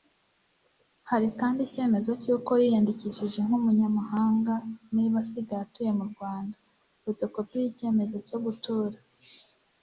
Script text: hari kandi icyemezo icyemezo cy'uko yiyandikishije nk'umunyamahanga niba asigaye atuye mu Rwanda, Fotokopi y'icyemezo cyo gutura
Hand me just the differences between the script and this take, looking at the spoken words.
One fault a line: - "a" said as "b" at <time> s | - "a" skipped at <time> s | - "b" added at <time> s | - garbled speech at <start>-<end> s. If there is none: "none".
- "icyemezo" skipped at 2.1 s